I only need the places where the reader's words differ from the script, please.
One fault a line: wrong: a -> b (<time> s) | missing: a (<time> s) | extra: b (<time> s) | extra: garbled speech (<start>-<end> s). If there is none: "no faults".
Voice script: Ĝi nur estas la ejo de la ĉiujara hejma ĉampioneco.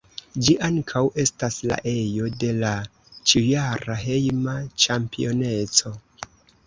wrong: nur -> ankaŭ (0.7 s)